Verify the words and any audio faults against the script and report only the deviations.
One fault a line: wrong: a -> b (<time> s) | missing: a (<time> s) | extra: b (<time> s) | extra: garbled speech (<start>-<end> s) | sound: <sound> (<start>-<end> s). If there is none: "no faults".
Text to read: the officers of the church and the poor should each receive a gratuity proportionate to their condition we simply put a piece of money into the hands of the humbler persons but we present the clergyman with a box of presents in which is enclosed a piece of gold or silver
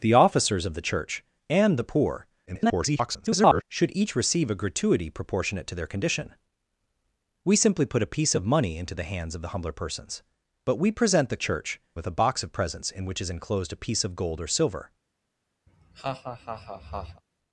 extra: garbled speech (2.5-3.6 s)
wrong: clergyman -> church (11.4 s)
sound: laugh (15.7-17.2 s)